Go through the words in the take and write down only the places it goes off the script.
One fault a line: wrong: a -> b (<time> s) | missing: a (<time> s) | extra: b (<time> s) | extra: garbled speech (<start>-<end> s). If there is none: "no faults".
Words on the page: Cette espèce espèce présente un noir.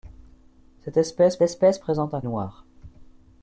no faults